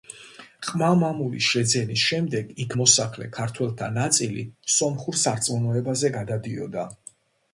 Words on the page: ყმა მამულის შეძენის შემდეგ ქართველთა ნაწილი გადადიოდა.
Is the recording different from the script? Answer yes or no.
yes